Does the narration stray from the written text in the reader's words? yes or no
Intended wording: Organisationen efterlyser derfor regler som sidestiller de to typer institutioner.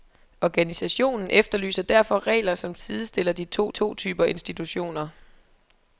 yes